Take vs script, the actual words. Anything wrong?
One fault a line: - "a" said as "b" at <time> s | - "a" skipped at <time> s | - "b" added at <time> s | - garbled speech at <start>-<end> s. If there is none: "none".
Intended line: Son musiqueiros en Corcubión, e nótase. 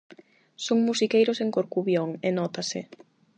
none